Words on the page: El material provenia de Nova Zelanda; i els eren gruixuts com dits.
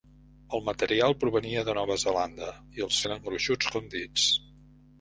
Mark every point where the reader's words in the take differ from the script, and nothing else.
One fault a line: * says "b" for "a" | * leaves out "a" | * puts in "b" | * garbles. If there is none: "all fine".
all fine